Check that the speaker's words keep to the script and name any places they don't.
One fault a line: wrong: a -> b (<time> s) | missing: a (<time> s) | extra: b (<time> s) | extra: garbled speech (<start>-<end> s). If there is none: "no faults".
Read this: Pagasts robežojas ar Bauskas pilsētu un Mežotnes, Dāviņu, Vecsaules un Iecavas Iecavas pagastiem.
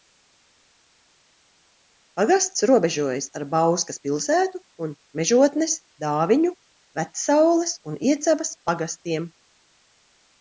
missing: Iecavas (8.5 s)